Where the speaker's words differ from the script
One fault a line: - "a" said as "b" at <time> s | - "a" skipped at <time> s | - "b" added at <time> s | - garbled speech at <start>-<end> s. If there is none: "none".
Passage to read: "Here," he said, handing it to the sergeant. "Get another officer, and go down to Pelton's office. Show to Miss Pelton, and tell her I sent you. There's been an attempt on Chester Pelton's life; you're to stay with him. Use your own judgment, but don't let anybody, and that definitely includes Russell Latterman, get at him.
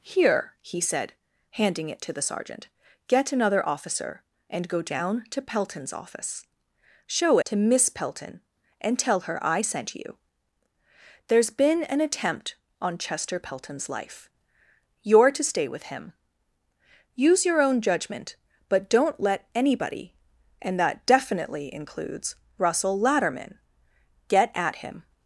none